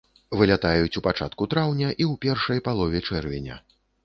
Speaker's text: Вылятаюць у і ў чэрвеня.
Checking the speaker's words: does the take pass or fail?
fail